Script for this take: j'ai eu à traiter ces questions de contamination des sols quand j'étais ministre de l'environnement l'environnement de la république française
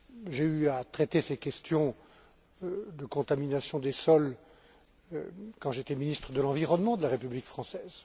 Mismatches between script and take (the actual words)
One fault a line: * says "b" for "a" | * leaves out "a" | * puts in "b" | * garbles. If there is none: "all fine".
* leaves out "l'environnement"